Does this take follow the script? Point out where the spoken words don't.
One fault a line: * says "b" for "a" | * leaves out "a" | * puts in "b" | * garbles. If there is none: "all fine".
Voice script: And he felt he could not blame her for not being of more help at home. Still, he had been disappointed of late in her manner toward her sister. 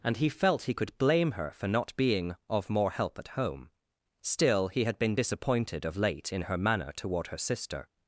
* leaves out "not"